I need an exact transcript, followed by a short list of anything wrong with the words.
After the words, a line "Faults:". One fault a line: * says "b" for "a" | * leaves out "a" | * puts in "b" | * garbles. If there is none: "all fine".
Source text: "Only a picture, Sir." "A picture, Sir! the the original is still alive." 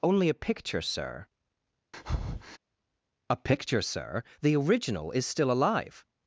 "Only a picture, Sir." "A picture, Sir! the original is still alive."
Faults:
* leaves out "the"